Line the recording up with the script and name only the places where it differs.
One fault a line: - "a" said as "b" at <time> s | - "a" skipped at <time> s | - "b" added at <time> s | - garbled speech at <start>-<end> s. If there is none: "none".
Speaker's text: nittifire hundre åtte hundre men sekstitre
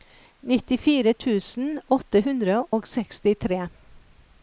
- "hundre" said as "tusen" at 1.2 s
- "men" said as "og" at 2.8 s